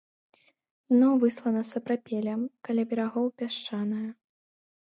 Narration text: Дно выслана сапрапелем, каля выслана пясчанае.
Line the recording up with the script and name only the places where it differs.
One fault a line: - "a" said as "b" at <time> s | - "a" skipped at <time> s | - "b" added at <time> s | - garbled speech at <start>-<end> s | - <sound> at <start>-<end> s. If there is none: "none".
- "выслана" said as "берагоў" at 2.9 s